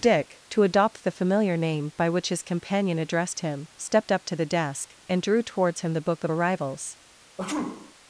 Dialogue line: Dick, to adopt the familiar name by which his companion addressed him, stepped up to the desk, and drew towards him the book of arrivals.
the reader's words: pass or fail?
pass